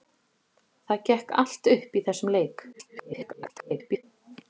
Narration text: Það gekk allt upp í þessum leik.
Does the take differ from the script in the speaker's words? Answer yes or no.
yes